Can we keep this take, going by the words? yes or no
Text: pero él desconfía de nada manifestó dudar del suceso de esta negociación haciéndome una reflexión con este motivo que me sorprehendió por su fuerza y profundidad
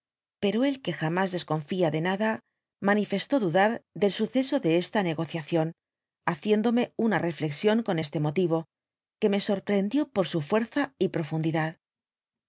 no